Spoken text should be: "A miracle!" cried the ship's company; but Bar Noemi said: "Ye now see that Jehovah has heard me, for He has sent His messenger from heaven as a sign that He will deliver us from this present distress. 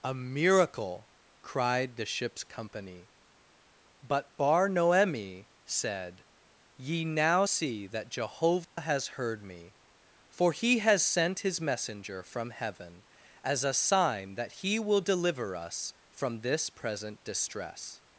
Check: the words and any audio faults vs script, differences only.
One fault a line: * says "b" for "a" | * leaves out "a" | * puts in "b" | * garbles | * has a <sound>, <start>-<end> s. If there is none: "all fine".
* has a dropout, 8.6-8.8 s